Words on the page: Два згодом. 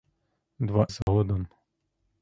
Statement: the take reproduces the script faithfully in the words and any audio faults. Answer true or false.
false